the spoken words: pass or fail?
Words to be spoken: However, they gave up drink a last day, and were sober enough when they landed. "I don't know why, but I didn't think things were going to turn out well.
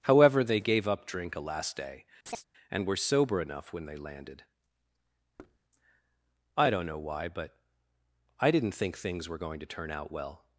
pass